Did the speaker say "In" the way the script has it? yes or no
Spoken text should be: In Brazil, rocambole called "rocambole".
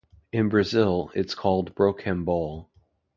yes